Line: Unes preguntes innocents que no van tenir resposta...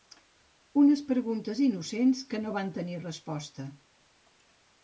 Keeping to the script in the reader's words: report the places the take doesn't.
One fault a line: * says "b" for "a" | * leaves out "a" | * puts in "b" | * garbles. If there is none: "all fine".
all fine